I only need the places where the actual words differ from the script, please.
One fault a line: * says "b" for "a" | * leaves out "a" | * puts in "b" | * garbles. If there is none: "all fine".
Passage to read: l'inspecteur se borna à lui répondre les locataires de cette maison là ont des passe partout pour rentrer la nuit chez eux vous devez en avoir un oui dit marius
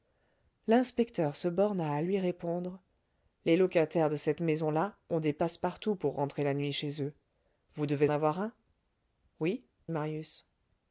* leaves out "en"
* leaves out "dit"